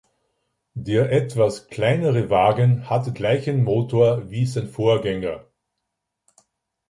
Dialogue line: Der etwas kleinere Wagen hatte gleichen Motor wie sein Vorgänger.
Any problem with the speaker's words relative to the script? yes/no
no